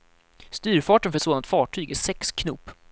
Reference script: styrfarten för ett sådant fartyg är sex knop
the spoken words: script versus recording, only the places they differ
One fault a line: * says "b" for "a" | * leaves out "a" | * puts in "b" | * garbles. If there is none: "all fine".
all fine